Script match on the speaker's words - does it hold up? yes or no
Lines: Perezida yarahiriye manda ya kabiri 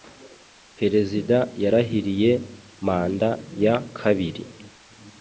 yes